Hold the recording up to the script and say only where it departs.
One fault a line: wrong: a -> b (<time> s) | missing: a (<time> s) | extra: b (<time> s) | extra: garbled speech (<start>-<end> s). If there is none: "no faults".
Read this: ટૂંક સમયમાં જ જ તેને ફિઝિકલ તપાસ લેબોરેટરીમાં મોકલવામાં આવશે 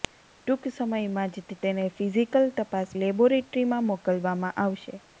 no faults